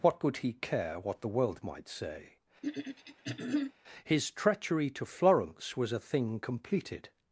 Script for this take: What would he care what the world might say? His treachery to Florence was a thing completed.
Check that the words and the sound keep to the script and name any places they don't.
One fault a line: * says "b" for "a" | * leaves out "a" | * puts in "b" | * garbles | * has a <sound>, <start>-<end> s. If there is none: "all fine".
* says "could" for "would"
* has a throat clearing, 2.6-3.7 s